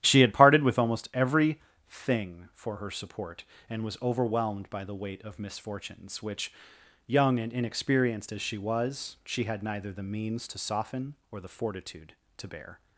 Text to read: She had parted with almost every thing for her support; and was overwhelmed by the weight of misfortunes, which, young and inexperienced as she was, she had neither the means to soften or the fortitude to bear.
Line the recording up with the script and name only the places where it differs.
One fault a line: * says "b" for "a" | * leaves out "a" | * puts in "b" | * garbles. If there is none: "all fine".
all fine